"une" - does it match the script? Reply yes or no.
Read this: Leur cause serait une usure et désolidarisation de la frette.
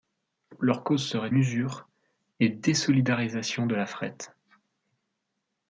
no